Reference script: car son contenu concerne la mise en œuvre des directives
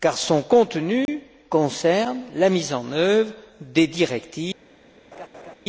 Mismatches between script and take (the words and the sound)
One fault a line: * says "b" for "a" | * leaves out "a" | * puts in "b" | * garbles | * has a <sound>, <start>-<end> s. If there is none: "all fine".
* has a dropout, 1.1-1.1 s
* has a laugh, 5.1-5.6 s